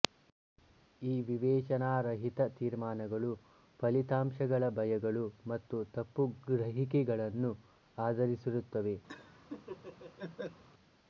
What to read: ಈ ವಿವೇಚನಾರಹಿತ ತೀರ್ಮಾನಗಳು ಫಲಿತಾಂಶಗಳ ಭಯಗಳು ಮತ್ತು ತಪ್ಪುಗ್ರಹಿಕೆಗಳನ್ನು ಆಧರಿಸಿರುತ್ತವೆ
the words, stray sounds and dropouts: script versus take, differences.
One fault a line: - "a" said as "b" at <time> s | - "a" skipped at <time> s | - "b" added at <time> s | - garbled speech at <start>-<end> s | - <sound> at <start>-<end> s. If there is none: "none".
- laugh at 9.1-10.6 s